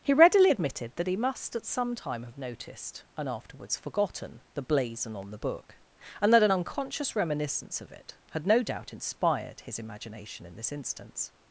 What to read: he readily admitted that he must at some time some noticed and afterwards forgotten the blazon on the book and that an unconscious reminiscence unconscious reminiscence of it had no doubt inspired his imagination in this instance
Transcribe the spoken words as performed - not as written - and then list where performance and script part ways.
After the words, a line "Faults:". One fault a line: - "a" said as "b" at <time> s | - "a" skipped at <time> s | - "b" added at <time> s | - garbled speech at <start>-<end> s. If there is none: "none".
he readily admitted that he must at some time have noticed and afterwards forgotten the blazon on the book and that an unconscious reminiscence of it had no doubt inspired his imagination in this instance
Faults:
- "some" said as "have" at 2.2 s
- "unconscious reminiscence" skipped at 7.8 s